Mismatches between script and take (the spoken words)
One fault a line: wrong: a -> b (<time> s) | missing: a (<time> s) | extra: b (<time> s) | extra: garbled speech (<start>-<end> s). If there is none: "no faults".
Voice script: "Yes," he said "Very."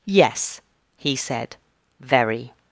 no faults